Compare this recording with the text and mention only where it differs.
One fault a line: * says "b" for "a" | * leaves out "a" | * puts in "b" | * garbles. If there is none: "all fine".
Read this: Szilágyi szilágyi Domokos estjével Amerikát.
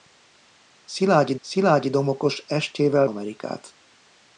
all fine